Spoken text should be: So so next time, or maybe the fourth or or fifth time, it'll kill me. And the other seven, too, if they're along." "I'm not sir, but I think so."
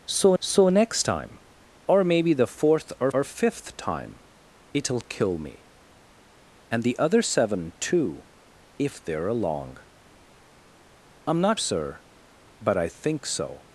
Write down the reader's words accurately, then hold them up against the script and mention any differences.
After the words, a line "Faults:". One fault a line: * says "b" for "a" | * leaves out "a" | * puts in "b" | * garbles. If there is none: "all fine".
So so next time, or maybe the fourth or or fifth time, it'll kill me. And the other seven, too, if they're along." "I'm not sir, but I think so."
Faults:
all fine